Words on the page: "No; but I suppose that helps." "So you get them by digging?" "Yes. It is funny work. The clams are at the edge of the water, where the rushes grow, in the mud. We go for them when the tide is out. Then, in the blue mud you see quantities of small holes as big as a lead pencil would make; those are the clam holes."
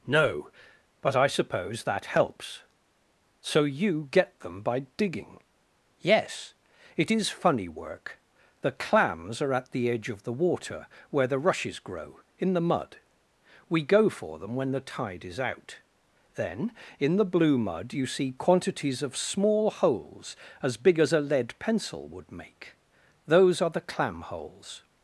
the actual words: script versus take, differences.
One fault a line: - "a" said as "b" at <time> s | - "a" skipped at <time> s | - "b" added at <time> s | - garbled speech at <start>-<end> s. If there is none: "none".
none